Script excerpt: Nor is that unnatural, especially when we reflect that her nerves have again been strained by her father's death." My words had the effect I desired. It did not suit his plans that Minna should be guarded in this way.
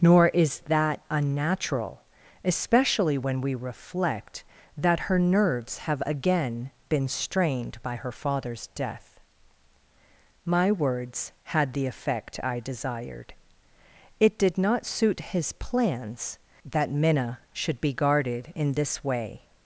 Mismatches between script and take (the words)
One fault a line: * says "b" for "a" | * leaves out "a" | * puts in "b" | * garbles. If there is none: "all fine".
all fine